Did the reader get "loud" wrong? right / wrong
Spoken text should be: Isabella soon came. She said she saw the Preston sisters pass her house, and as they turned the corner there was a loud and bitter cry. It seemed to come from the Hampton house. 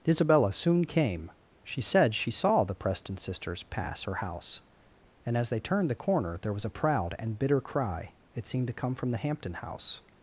wrong